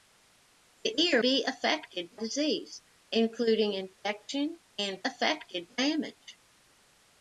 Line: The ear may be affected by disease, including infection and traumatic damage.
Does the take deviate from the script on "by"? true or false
true